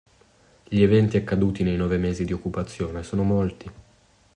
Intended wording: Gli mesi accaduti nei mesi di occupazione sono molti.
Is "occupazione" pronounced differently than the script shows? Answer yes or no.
no